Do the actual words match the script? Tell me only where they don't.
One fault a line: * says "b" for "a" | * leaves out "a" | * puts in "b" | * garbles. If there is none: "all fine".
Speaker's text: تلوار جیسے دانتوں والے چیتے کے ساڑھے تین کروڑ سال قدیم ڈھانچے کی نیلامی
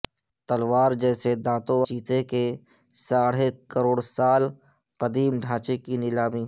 * leaves out "والے"
* leaves out "تین"